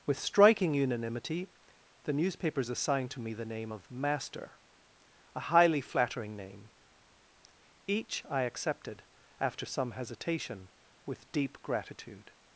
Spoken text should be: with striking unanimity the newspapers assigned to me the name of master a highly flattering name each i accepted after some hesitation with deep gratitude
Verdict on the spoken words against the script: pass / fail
pass